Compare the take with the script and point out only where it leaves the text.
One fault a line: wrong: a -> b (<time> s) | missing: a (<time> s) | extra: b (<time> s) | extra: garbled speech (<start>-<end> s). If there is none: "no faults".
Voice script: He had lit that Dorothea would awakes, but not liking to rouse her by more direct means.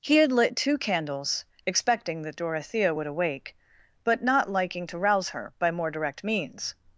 extra: two candles expecting (0.6 s)
wrong: awakes -> awake (3.1 s)